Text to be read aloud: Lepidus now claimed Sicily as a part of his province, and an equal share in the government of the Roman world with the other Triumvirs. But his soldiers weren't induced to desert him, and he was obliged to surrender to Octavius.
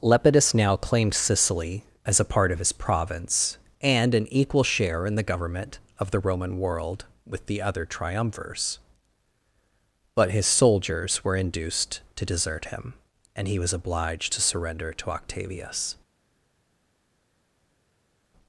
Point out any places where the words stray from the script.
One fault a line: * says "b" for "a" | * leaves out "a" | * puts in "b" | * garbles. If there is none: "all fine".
* says "were" for "weren't"